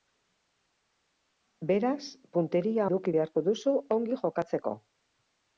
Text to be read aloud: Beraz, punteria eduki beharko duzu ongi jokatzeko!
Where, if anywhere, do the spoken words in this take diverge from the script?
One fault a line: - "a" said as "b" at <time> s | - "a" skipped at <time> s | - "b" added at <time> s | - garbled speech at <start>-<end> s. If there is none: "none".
none